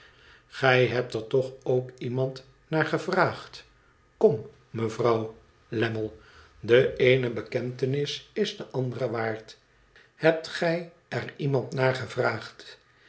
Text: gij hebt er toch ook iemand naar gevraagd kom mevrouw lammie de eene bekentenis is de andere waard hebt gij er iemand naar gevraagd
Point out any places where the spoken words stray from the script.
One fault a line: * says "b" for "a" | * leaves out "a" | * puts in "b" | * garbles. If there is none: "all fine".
all fine